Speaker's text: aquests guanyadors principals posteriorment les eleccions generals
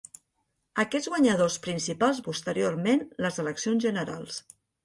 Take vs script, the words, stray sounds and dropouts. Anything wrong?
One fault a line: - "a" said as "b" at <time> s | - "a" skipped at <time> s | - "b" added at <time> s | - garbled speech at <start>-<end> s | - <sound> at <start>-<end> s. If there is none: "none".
none